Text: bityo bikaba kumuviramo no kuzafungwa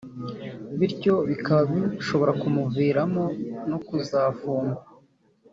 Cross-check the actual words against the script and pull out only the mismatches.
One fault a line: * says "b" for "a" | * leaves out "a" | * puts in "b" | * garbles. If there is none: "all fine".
* puts in "bishobora"